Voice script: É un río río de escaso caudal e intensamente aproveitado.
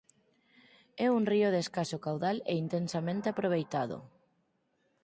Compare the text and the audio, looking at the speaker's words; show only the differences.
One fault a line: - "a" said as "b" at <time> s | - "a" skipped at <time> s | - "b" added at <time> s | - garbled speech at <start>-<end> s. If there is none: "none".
- "río" skipped at 1.5 s